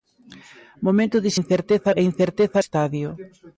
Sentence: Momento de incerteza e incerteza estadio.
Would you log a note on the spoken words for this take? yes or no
no